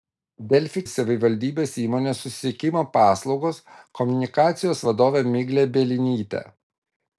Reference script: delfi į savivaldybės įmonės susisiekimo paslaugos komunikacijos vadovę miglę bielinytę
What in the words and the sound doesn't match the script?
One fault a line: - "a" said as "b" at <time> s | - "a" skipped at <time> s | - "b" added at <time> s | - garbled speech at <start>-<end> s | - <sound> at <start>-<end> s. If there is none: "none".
none